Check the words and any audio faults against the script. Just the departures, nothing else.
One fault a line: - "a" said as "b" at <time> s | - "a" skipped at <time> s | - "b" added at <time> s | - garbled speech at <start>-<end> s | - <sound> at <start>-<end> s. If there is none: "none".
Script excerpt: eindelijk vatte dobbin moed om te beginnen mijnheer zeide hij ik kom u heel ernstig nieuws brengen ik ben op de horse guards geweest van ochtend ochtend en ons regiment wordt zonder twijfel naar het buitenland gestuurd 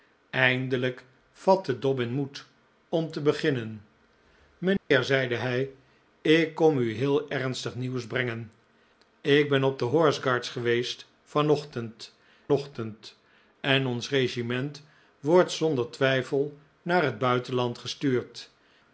- dropout at 4.8-4.9 s